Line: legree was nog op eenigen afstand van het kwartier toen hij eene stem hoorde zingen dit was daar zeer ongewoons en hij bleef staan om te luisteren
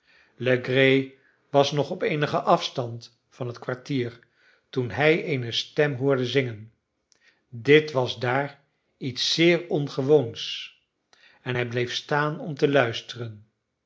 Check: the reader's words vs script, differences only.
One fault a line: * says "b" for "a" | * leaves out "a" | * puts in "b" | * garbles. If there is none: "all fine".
* puts in "iets"